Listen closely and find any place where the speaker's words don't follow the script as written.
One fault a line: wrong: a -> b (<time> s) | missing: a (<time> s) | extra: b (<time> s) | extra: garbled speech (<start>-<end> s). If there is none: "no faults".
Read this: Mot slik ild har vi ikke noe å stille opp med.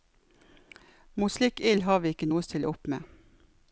no faults